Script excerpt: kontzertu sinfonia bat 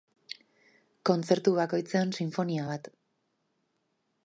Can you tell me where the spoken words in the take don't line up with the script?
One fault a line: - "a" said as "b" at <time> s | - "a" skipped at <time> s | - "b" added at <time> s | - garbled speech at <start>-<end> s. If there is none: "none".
- "bakoitzean" added at 1.6 s